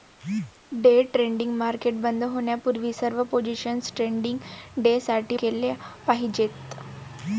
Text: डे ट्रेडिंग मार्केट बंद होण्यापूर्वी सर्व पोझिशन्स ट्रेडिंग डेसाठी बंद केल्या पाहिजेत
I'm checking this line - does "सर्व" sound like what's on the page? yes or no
yes